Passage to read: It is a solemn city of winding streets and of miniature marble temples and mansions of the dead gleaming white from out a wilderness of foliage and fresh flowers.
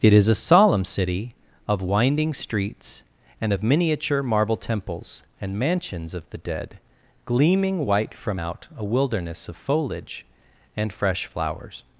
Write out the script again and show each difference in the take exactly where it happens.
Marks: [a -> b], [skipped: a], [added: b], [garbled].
It is a solemn city of winding streets and of miniature marble temples and mansions of the dead gleaming white from out a wilderness of foliage and fresh flowers.